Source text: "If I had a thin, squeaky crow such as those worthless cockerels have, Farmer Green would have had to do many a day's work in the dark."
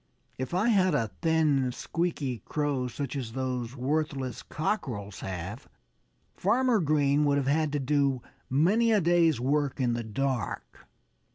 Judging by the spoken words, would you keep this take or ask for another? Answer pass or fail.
pass